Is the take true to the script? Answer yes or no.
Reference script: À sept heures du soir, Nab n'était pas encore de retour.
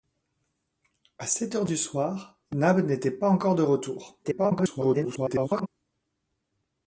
no